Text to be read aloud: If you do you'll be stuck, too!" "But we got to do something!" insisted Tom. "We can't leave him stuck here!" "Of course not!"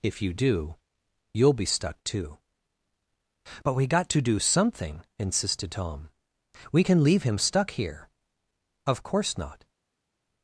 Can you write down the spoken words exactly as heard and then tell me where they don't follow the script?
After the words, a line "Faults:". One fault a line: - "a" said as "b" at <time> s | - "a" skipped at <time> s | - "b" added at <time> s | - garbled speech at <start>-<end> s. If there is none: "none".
If you do you'll be stuck, too!" "But we got to do something!" insisted Tom. "We can leave him stuck here!" "Of course not!"
Faults:
- "can't" said as "can" at 6.8 s